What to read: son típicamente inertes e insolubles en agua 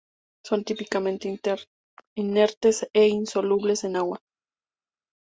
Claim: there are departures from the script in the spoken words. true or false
false